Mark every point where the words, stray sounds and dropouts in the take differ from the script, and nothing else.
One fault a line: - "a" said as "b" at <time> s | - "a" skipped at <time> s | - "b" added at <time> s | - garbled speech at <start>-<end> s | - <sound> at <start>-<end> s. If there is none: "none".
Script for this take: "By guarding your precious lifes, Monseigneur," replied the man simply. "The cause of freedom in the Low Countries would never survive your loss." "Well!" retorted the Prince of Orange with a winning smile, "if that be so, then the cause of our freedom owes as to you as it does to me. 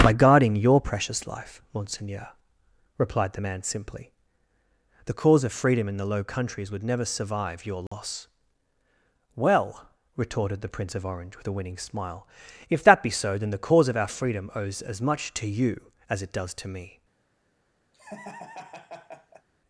- "lifes" said as "life" at 1.3 s
- dropout at 7.9-7.9 s
- "much" added at 15.0 s
- laugh at 17.9-19.5 s